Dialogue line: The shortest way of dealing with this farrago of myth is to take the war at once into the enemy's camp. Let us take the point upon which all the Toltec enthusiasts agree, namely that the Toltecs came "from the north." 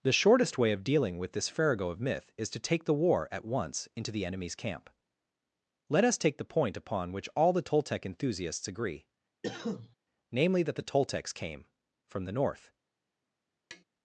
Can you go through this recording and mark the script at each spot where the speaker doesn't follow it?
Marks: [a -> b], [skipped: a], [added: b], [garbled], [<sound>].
The shortest way of dealing with this farrago of myth is to take the war at once into the enemy's camp. Let us take the point upon which all the Toltec enthusiasts agree, [cough] namely that the Toltecs came "from the north." [tap]